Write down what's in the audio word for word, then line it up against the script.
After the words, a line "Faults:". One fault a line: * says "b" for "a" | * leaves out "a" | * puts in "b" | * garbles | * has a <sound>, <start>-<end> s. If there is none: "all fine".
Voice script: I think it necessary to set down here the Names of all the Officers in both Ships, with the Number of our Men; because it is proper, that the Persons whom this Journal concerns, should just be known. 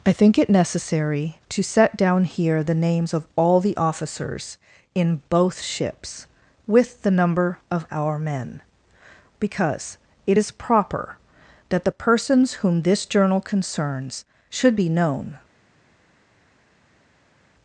I think it necessary to set down here the Names of all the Officers in both Ships, with the Number of our Men; because it is proper, that the Persons whom this Journal concerns, should be known.
Faults:
* leaves out "just"